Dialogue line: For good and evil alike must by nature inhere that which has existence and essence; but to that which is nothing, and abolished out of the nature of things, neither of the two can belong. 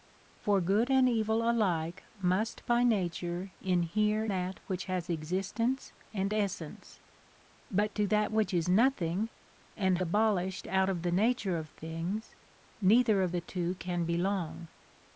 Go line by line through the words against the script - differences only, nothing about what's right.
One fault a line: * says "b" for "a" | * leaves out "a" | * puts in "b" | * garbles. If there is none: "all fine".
all fine